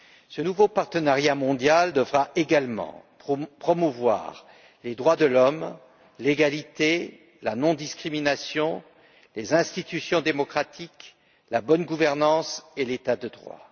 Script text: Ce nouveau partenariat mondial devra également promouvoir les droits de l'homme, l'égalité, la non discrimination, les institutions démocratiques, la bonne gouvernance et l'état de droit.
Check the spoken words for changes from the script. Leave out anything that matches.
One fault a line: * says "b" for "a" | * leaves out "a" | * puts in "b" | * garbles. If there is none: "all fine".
all fine